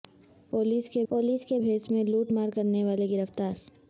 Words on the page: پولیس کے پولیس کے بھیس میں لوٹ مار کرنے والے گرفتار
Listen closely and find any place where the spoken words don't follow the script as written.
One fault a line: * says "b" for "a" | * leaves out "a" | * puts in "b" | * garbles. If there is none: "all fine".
all fine